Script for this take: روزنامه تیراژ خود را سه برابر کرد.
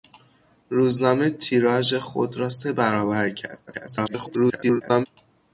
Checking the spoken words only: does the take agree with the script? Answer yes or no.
no